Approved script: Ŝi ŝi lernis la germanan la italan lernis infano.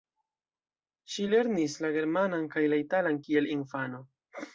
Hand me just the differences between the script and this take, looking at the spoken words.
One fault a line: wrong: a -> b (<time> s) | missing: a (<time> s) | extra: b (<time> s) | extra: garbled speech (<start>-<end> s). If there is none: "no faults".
missing: ŝi (1.3 s)
extra: kaj (2.5 s)
wrong: lernis -> kiel (3.2 s)